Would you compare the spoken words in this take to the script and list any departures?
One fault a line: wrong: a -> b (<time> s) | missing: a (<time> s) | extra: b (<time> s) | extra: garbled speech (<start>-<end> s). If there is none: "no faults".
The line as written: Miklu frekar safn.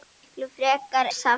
no faults